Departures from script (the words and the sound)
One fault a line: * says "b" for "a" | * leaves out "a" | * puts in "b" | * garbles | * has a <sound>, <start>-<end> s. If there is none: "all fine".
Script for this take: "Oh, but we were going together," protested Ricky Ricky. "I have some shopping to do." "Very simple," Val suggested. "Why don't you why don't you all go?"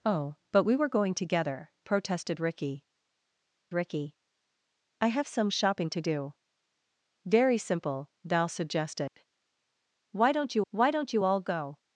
* has a dropout, 9.1-9.2 s